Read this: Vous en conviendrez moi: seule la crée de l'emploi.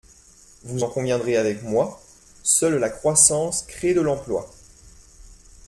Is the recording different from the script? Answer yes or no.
yes